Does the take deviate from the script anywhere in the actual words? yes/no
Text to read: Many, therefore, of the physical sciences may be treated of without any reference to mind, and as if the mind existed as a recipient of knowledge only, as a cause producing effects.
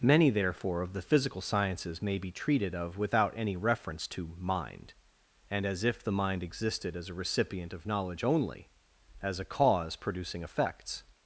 no